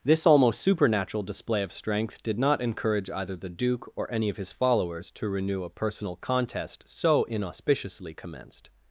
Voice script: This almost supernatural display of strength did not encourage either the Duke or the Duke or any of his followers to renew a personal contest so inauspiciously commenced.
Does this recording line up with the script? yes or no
no